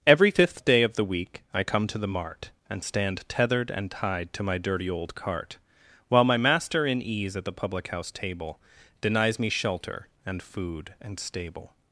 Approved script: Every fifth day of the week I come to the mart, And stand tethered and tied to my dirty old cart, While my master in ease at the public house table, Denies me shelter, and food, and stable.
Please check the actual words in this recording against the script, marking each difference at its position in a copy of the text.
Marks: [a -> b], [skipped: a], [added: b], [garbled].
Every fifth day of the week I come to the mart, And stand tethered and tied to my dirty old cart, While my master in ease at the public house table, Denies me shelter, and food, and stable.